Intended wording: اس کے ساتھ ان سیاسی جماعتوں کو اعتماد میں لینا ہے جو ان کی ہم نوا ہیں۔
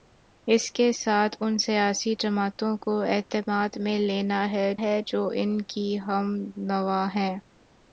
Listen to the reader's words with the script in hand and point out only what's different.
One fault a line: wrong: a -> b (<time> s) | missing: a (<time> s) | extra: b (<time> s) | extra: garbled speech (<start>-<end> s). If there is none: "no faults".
extra: ہے (4.8 s)